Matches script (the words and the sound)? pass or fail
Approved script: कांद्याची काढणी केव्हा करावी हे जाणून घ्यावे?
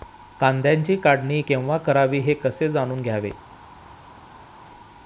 fail